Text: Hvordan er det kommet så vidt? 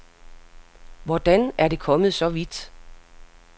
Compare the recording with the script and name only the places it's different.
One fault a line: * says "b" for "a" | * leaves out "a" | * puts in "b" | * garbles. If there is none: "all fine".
all fine